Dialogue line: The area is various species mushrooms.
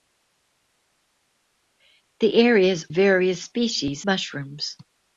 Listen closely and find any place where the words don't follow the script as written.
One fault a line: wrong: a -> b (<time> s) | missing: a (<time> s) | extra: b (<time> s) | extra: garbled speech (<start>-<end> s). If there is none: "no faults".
no faults